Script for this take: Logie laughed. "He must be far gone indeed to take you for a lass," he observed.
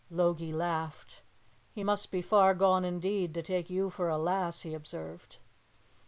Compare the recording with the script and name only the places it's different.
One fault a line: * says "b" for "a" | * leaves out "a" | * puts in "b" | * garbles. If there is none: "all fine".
all fine